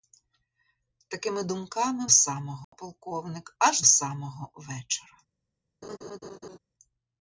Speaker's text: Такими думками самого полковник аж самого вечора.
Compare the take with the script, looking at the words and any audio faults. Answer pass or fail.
fail